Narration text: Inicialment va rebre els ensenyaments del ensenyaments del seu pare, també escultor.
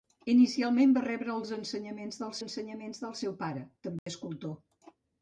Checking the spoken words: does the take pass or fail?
pass